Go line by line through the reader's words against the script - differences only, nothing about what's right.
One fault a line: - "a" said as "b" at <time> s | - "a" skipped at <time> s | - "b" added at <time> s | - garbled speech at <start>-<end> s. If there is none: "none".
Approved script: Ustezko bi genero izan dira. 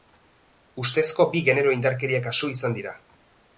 - "indarkeria kasu" added at 1.8 s